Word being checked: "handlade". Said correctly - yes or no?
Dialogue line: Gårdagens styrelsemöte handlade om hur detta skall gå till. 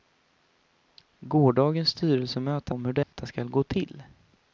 no